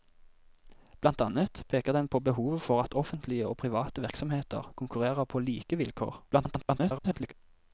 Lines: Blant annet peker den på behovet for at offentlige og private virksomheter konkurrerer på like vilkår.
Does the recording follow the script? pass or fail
fail